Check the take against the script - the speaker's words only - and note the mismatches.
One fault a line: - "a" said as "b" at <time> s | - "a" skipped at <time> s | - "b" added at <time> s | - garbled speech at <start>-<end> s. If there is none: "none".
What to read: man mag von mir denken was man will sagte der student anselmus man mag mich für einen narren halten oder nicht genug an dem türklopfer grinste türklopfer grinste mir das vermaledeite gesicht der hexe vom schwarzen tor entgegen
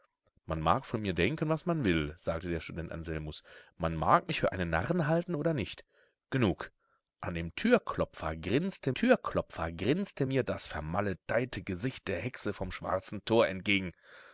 none